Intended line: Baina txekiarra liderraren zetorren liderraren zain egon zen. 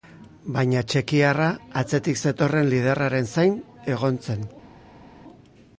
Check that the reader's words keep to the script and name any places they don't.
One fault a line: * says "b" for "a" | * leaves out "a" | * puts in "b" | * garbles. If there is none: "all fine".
* says "atzetik" for "liderraren"